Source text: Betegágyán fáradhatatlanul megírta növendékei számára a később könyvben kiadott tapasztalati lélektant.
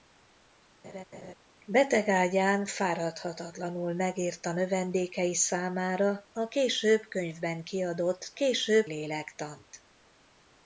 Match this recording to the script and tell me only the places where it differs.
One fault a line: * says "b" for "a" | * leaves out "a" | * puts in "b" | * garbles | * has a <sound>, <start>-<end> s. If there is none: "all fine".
* has a laugh, 0.8-1.3 s
* says "később" for "tapasztalati"